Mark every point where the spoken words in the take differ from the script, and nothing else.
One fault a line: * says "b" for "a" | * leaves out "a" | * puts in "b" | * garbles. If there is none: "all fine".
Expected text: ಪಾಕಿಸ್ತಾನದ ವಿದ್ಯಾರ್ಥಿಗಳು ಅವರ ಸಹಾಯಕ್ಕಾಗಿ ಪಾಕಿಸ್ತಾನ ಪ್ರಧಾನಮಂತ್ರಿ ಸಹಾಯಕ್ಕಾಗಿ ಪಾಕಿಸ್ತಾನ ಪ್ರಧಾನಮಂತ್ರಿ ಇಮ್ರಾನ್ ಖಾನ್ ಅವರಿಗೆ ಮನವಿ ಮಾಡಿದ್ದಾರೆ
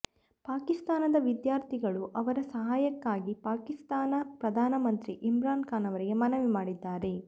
* leaves out "ಸಹಾಯಕ್ಕಾಗಿ ಪಾಕಿಸ್ತಾನ ಪ್ರಧಾನಮಂತ್ರಿ"